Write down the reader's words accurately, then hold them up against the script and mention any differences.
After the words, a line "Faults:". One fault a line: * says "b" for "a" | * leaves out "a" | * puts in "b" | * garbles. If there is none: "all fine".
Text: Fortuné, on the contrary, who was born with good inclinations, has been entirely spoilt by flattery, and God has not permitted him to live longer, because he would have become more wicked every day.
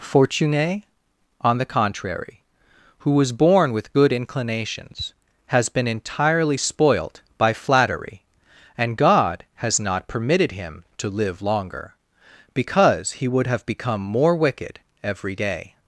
Fortuné, on the contrary, who was born with good inclinations, has been entirely spoilt by flattery, and God has not permitted him to live longer, because he would have become more wicked every day.
Faults:
all fine